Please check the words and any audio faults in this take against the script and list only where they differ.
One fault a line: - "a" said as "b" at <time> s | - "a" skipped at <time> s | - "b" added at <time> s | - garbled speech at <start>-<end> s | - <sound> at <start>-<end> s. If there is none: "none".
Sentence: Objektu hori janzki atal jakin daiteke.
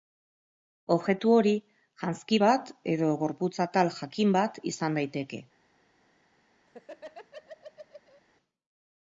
- "bat edo gorputz" added at 2.4 s
- "bat izan" added at 4.4 s
- laugh at 6.7-8.2 s